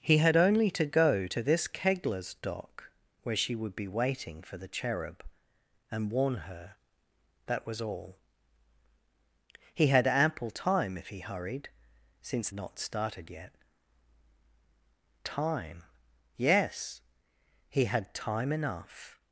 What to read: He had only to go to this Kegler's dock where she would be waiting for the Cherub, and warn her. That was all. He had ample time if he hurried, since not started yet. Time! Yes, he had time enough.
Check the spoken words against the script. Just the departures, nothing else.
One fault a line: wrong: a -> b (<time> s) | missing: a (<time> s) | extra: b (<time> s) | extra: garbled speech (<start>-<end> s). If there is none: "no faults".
no faults